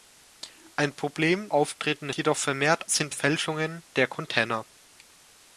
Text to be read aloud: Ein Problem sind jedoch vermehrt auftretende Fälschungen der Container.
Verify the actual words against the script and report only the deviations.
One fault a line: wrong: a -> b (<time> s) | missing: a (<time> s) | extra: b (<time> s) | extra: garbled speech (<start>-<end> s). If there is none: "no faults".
wrong: sind -> auftretende (1.5 s)
wrong: auftretende -> sind (2.9 s)